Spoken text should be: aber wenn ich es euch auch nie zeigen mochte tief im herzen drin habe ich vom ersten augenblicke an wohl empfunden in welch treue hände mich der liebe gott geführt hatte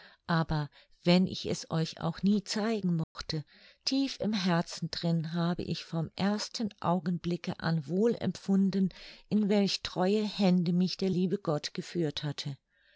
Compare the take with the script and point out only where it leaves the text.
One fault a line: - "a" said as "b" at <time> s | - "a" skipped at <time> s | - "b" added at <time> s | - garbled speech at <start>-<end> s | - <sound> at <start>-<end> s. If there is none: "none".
- dropout at 3.0-3.2 s